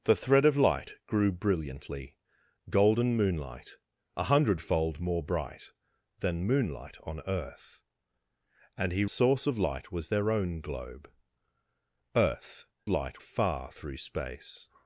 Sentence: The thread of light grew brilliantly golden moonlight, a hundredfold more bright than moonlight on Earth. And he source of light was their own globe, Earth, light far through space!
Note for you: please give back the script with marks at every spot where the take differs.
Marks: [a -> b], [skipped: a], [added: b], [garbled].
The thread of light grew brilliantly golden moonlight, a hundredfold more bright than moonlight on Earth. And he source of light was their own globe, Earth, light far through space!